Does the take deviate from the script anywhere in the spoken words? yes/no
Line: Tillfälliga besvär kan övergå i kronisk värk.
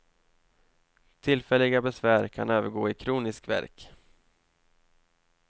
no